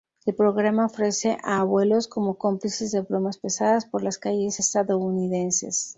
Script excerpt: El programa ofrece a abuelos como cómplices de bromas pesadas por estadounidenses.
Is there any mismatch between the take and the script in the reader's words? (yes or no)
yes